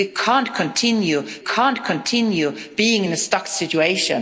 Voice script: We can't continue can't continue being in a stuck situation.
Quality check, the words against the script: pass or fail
pass